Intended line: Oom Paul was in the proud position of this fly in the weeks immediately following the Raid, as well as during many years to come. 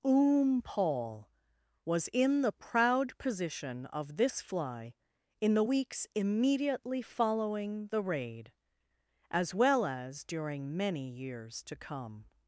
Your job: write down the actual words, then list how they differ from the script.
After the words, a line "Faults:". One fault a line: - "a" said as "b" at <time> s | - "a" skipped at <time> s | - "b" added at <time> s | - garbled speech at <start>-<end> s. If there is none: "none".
Oom Paul was in the proud position of this fly in the weeks immediately following the Raid, as well as during many years to come.
Faults:
none